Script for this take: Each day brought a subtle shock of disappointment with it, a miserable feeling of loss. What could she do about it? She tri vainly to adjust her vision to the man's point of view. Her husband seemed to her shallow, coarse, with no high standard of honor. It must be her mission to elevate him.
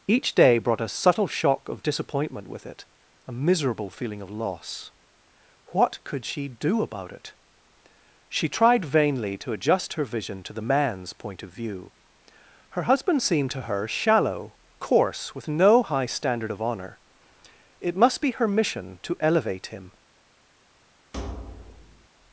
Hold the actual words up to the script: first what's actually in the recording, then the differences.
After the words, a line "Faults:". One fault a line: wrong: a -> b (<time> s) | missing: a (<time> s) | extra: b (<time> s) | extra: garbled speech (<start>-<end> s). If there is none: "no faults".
Each day brought a subtle shock of disappointment with it, a miserable feeling of loss. What could she do about it? She tried vainly to adjust her vision to the man's point of view. Her husband seemed to her shallow, coarse, with no high standard of honor. It must be her mission to elevate him.
Faults:
wrong: tri -> tried (8.5 s)